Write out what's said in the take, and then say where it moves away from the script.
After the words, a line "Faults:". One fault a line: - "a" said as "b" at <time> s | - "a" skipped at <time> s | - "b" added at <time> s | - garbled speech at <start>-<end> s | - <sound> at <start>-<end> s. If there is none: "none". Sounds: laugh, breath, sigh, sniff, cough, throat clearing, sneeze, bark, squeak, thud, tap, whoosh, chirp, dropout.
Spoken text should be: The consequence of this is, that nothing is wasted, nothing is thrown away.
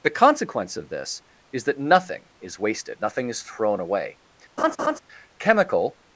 The consequence of this is, that nothing is wasted, nothing is thrown away. Chemical
Faults:
- laugh at 4.6-5.0 s
- "Chemical" added at 5.4 s